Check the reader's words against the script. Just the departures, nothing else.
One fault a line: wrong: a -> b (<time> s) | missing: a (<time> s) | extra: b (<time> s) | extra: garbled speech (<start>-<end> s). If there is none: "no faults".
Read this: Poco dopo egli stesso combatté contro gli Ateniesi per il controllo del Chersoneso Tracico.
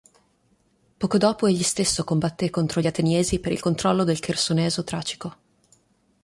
no faults